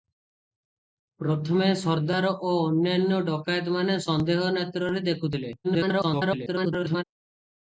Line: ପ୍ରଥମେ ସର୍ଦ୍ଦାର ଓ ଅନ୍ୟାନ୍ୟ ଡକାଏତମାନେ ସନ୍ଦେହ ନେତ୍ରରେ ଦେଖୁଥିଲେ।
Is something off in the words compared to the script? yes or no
yes